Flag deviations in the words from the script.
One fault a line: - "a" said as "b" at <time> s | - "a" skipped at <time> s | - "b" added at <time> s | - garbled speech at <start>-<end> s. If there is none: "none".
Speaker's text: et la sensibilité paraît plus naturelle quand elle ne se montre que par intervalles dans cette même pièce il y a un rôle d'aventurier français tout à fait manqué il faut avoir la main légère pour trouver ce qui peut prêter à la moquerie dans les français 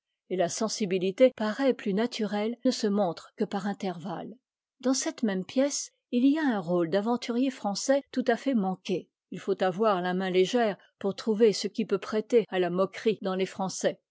- "quand elle" skipped at 2.6 s